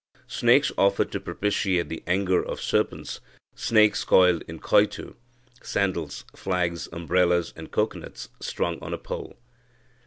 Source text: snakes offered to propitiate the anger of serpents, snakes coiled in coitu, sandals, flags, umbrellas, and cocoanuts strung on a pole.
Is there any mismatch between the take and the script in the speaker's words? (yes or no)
no